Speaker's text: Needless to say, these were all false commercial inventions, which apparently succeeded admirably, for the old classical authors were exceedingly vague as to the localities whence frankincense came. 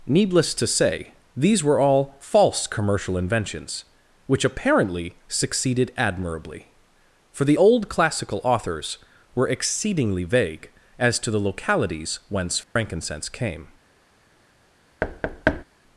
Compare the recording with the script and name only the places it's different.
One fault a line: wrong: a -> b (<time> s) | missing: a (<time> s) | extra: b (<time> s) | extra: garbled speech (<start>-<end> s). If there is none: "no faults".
no faults